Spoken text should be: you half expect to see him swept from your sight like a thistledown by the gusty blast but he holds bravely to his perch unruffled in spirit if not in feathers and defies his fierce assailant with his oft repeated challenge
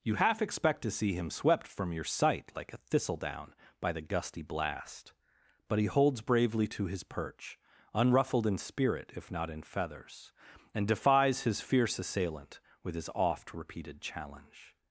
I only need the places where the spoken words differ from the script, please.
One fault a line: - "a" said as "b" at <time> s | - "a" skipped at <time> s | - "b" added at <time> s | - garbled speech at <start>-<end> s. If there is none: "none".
none